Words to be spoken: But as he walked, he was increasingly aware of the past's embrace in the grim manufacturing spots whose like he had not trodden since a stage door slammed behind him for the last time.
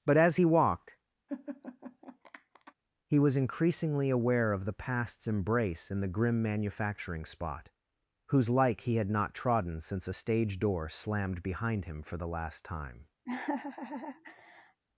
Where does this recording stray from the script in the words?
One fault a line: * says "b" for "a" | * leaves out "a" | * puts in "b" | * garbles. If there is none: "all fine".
* says "spot" for "spots"